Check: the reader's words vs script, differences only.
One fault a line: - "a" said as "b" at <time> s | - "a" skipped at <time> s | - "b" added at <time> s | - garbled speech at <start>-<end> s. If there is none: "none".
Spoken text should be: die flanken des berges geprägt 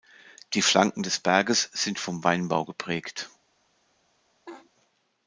- "sind vom weinbau" added at 1.7 s